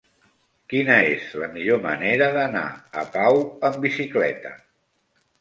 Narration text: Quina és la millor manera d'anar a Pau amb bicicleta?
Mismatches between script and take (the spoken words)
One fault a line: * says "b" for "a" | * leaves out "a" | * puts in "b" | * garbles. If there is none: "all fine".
all fine